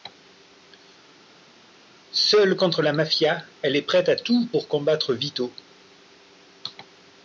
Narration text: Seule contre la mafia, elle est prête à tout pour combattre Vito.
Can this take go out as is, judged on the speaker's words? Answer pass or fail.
pass